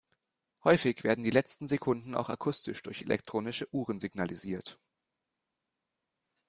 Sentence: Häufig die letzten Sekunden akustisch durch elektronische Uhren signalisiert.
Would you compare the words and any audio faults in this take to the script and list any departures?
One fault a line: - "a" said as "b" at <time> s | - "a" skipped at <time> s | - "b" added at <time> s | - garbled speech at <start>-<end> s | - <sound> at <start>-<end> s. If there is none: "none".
- "werden" added at 1.0 s
- "auch" added at 2.1 s